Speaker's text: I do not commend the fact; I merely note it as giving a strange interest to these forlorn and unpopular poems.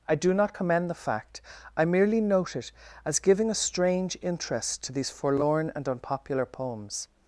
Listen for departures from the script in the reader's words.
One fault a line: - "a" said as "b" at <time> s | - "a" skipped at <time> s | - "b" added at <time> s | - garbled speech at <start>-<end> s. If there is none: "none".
none